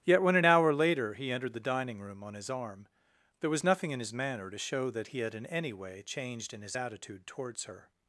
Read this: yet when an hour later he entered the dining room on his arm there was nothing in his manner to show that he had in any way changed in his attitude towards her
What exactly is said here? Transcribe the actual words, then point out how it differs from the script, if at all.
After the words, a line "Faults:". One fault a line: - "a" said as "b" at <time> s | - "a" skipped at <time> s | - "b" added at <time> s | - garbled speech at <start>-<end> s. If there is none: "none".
yet when an hour later he entered the dining room on his arm there was nothing in his manner to show that he had in any way changed in his attitude towards her
Faults:
none